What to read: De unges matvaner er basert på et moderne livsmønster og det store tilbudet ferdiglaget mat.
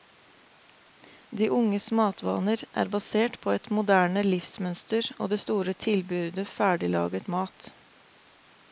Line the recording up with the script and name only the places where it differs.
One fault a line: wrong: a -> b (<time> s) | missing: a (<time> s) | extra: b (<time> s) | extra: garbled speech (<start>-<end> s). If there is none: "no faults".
no faults